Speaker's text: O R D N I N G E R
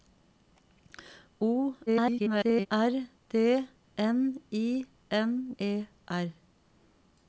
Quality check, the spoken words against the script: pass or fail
fail